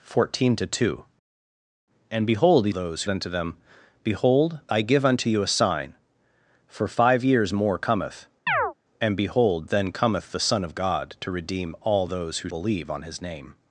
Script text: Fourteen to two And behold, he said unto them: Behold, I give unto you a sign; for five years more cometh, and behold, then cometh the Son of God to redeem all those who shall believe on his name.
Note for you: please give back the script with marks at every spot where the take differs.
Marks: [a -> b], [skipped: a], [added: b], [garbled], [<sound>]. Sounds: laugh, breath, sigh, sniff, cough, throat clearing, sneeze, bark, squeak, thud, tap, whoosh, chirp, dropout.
Fourteen to two And behold, he [said -> those] unto them: Behold, I give unto you a sign; for five years more cometh, [chirp] and behold, then cometh the Son of God to redeem all those who [skipped: shall] believe on his name.